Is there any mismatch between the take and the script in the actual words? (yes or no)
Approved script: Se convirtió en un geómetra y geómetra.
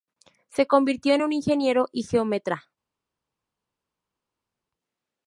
yes